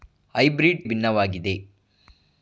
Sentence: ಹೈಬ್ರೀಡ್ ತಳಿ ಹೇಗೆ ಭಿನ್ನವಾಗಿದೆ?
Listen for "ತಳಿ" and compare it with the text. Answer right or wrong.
wrong